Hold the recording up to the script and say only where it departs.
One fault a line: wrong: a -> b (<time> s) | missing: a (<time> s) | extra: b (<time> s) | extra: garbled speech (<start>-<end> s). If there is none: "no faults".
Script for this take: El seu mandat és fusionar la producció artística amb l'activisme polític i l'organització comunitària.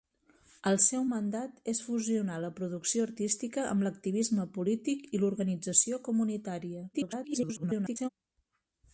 extra: garbled speech (6.9-8.1 s)